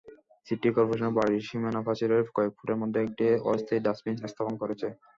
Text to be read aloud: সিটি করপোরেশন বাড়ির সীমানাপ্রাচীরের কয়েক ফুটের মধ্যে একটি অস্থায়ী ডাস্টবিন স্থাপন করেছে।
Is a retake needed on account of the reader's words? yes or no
no